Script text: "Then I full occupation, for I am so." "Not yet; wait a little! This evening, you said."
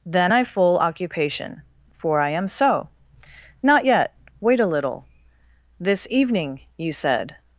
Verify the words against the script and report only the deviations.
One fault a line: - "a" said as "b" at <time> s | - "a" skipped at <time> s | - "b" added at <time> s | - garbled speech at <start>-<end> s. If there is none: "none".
none